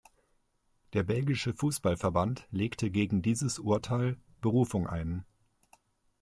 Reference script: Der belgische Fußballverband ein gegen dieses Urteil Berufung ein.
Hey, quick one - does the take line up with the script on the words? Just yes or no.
no